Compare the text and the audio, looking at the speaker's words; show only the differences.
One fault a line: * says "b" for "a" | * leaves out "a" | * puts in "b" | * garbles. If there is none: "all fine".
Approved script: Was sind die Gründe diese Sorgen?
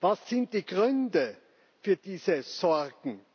* puts in "für"